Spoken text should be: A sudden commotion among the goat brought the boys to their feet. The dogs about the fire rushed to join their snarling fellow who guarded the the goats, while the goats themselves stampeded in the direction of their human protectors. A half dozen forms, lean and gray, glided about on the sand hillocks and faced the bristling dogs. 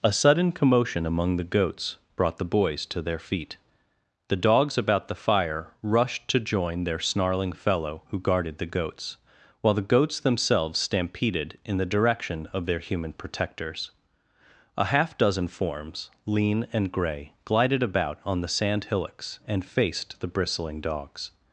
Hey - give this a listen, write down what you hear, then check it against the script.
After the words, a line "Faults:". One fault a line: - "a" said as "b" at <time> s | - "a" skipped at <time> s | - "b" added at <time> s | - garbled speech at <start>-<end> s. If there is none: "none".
A sudden commotion among the goats brought the boys to their feet. The dogs about the fire rushed to join their snarling fellow who guarded the goats, while the goats themselves stampeded in the direction of their human protectors. A half dozen forms, lean and gray, glided about on the sand hillocks and faced the bristling dogs.
Faults:
- "goat" said as "goats" at 1.4 s
- "the" skipped at 8.7 s